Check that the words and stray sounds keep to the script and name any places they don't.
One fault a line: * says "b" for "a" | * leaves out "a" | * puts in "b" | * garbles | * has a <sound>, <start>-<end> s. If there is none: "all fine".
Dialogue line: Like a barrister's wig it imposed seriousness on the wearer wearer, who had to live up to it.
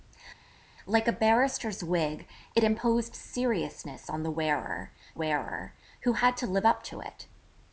all fine